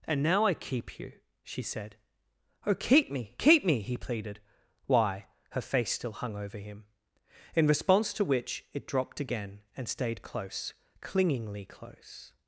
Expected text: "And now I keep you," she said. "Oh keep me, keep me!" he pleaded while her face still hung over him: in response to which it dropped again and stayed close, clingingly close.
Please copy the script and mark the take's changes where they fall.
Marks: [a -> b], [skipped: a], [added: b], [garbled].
"And now I keep you," she said. "Oh keep me, keep me!" he pleaded [while -> why] her face still hung over him: in response to which it dropped again and stayed close, clingingly close.